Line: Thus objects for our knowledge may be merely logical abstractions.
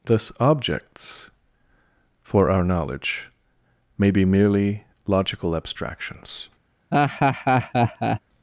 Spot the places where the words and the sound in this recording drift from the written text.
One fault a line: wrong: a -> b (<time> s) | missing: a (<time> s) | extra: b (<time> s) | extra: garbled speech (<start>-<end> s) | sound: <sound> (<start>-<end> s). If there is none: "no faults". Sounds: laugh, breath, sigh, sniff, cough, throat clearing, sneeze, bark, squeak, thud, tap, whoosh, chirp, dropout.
sound: laugh (6.9-8.2 s)